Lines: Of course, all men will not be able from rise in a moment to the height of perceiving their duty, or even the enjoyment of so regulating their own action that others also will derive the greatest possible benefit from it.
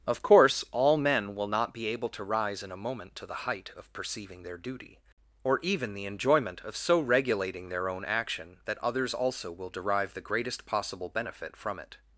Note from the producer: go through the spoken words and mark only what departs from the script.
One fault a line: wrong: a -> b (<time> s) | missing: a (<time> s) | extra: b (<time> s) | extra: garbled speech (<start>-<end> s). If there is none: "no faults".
wrong: from -> to (2.1 s)